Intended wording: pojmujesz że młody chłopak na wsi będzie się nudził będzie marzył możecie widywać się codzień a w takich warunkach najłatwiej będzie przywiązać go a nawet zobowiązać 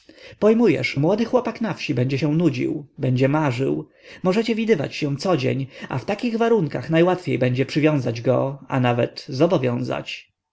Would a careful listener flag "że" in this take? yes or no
yes